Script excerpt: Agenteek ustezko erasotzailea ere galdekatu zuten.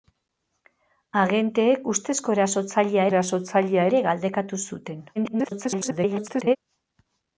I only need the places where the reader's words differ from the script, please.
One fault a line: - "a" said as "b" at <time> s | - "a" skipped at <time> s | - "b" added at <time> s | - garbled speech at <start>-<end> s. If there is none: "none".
- "erasotzailea" added at 3.1 s
- garbled speech at 5.2-6.6 s